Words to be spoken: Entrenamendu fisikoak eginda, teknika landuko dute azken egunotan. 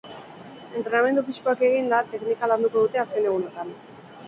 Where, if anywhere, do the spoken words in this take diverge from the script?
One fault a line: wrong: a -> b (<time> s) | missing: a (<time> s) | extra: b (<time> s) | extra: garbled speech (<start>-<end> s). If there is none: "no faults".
no faults